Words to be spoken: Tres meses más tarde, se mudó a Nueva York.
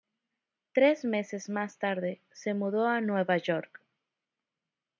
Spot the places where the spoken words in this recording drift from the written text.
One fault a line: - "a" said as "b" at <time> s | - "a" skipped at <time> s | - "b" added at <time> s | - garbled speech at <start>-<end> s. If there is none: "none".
none